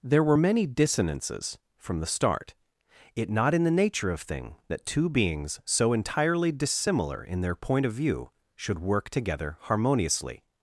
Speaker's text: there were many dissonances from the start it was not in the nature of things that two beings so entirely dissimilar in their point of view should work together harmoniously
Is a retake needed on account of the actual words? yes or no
yes